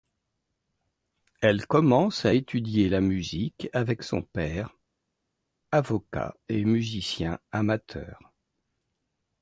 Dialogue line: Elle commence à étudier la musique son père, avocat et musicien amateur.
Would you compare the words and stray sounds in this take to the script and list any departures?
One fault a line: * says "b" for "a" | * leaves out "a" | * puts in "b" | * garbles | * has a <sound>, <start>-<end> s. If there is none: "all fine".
* puts in "avec"